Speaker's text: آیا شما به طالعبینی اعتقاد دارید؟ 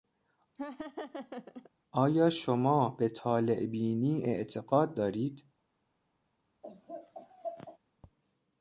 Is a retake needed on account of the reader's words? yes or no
no